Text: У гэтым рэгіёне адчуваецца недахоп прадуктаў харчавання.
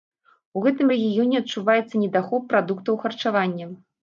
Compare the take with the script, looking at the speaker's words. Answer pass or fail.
pass